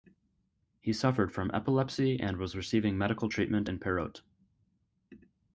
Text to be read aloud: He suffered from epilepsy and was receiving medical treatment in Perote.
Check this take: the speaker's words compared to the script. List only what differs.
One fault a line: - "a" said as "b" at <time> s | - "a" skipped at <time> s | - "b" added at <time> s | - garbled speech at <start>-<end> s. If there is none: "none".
none